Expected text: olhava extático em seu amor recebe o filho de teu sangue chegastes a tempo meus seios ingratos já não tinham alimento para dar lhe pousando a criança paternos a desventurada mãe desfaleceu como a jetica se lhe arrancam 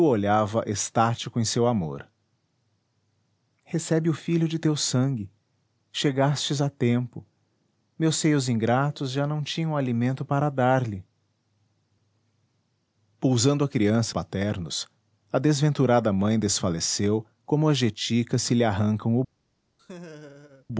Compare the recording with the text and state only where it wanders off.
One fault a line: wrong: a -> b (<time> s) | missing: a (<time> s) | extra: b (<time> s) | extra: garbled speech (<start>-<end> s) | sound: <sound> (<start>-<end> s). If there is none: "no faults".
sound: laugh (19.8-20.7 s)